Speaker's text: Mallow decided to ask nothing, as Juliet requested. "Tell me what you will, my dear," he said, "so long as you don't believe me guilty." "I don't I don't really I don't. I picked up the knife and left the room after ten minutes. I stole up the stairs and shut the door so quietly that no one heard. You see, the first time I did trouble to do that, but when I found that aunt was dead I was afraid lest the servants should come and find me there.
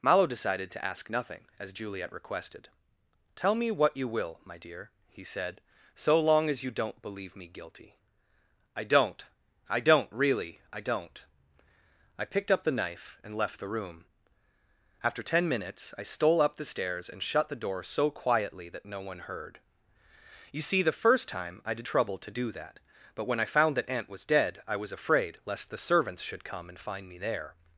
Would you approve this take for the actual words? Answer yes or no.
yes